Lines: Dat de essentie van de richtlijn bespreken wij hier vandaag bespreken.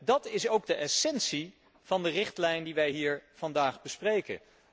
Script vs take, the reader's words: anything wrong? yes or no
yes